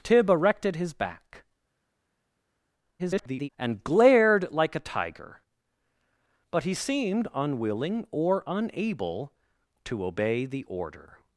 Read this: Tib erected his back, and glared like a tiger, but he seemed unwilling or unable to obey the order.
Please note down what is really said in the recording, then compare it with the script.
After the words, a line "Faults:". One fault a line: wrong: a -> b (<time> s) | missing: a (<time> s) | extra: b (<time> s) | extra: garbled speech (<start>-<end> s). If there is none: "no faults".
Tib erected his back, [garbled] and glared like a tiger, but he seemed unwilling or unable to obey the order.
Faults:
extra: garbled speech (3.0-3.5 s)